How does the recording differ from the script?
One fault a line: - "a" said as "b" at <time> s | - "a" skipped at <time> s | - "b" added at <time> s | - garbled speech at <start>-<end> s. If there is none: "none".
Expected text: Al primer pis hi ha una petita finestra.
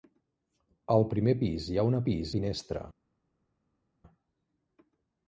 - "petita" said as "pis" at 2.1 s